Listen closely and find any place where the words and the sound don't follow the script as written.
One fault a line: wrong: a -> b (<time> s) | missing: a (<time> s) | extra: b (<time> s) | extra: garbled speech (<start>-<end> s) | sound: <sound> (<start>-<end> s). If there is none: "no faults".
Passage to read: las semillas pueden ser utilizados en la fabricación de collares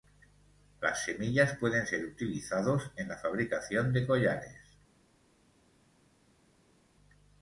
no faults